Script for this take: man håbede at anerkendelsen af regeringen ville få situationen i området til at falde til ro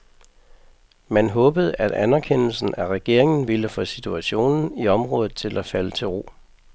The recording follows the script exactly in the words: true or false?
true